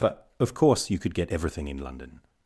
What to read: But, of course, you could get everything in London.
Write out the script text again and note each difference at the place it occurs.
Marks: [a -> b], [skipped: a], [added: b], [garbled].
But, of course, you could get everything in London.